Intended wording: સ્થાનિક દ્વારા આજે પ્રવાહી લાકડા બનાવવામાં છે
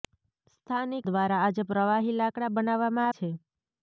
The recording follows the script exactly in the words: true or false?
true